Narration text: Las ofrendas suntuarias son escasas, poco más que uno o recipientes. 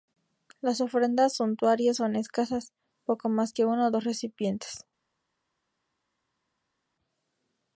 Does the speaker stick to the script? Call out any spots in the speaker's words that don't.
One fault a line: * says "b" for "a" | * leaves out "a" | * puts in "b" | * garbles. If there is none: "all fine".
* puts in "dos"